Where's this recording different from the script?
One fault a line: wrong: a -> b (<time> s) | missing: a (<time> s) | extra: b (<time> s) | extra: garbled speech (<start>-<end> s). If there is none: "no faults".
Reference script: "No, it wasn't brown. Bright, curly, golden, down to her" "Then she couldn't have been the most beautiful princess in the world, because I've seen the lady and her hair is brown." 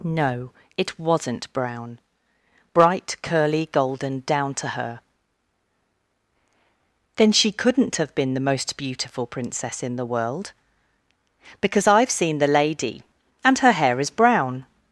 no faults